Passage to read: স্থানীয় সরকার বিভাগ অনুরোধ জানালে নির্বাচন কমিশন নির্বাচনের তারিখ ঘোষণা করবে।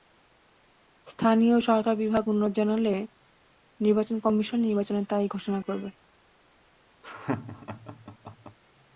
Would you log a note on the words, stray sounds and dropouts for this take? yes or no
yes